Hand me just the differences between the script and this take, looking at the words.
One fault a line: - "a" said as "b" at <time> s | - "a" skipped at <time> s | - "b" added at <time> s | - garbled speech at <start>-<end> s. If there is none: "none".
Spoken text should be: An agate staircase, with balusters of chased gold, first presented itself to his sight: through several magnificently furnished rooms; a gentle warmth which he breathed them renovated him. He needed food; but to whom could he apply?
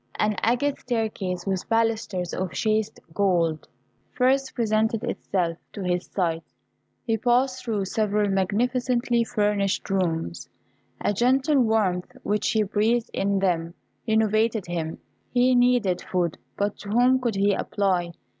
- "he passed" added at 7.0 s
- "in" added at 13.1 s